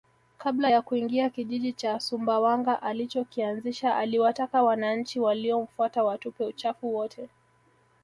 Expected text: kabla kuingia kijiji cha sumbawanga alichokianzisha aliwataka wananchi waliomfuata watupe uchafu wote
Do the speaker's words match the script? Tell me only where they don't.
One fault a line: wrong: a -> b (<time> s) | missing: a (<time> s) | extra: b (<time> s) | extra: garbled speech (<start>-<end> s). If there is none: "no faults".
extra: ya (0.7 s)